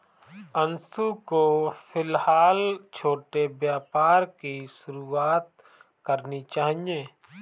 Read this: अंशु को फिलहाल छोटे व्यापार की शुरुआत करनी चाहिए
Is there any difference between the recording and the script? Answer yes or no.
no